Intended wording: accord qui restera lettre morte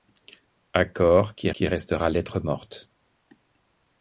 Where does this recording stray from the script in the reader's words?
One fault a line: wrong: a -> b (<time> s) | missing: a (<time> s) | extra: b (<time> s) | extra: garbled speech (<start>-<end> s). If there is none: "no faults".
extra: qui (1.5 s)